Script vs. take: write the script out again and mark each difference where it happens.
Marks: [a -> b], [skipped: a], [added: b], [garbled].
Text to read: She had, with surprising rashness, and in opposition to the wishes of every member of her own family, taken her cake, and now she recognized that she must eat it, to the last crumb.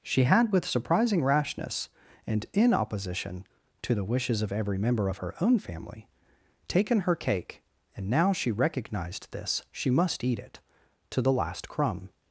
She had, with surprising rashness, and in opposition to the wishes of every member of her own family, taken her cake, and now she recognized [that -> this] she must eat it, to the last crumb.